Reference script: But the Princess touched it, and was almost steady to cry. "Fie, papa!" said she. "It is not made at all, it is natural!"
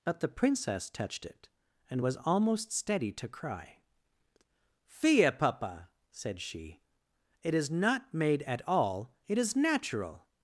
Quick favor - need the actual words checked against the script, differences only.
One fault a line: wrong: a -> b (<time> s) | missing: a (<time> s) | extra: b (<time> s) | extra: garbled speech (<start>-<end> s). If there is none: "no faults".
no faults